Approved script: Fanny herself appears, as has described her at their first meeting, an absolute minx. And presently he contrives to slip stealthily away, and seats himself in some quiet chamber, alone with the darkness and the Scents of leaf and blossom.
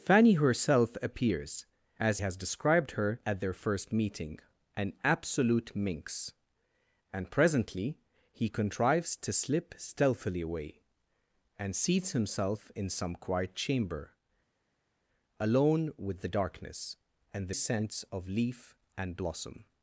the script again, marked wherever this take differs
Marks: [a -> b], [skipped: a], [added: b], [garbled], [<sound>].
Fanny herself appears, as has described her at their first meeting, an absolute minx. And presently he contrives to slip stealthily away, and seats himself in some quiet chamber, alone with the darkness and the Scents of leaf and blossom.